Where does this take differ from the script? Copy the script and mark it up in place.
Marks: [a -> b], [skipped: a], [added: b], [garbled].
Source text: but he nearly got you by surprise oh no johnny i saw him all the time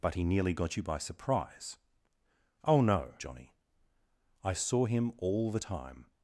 but he nearly got you by surprise oh no johnny i saw him all the time